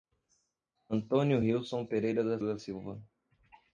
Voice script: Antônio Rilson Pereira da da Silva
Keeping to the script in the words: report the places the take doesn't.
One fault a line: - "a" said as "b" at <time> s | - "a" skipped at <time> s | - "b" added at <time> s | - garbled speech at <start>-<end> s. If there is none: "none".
none